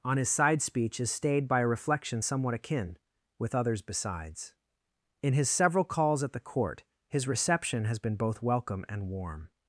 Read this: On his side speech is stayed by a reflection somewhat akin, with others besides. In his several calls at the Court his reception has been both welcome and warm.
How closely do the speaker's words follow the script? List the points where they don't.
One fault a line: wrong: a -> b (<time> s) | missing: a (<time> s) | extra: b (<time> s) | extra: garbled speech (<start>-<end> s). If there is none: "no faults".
no faults